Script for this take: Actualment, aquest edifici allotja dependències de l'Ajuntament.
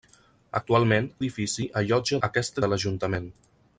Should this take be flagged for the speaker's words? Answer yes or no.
yes